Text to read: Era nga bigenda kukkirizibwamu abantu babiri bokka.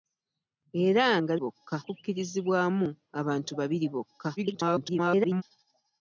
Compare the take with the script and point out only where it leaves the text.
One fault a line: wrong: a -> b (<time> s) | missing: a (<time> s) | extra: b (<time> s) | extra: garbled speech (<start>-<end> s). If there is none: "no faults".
wrong: bigenda -> bokka (1.4 s)
extra: garbled speech (4.4-5.4 s)